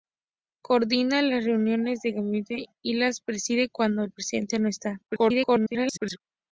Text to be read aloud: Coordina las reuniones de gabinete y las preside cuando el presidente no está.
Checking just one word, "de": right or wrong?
right